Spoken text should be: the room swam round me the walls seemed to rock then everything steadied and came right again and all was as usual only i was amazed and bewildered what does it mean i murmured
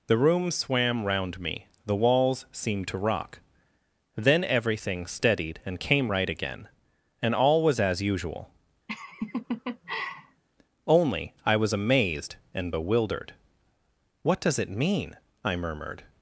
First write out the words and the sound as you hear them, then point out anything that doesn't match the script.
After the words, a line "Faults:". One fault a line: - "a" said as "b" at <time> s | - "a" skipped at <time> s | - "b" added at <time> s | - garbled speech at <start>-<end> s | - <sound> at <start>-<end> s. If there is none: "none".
the room swam round me the walls seemed to rock then everything steadied and came right again and all was as usual only i was amazed and bewildered what does it mean i murmured
Faults:
- laugh at 8.9-10.4 s